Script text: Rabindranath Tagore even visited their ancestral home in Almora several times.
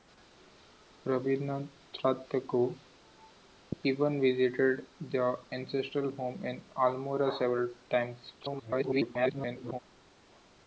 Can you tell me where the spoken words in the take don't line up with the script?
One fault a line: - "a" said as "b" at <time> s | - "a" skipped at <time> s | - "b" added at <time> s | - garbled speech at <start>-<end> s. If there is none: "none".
- garbled speech at 8.4-9.8 s